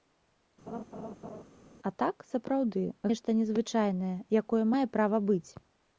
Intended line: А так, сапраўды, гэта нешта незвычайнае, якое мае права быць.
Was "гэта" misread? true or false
true